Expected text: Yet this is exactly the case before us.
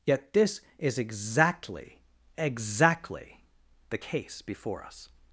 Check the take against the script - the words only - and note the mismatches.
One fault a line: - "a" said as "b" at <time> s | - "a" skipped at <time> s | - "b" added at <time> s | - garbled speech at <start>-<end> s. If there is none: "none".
- "exactly" added at 2.4 s